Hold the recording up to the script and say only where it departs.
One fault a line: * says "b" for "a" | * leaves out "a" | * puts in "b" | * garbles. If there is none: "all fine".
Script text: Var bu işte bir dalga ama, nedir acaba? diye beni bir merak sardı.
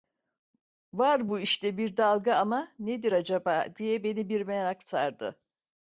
all fine